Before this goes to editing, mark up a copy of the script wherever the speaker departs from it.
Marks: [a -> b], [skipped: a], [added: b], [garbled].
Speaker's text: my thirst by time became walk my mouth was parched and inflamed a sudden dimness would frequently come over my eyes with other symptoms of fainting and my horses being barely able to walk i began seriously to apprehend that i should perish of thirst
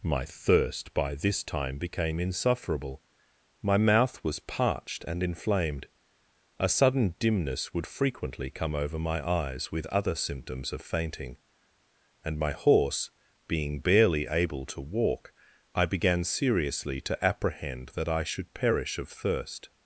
my thirst by [added: this] time became [walk -> insufferable] my mouth was parched and inflamed a sudden dimness would frequently come over my eyes with other symptoms of fainting and my [horses -> horse] being barely able to walk i began seriously to apprehend that i should perish of thirst